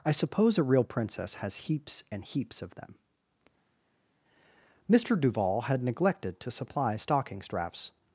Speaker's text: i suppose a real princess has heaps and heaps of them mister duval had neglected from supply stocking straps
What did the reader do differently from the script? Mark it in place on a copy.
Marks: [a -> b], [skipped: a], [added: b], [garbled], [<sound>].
i suppose a real princess has heaps and heaps of them mister duval had neglected [from -> to] supply stocking straps